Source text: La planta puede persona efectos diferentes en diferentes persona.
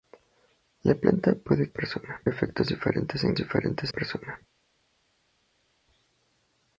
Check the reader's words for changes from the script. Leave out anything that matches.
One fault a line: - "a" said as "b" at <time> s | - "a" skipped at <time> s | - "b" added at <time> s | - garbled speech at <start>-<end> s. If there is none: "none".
none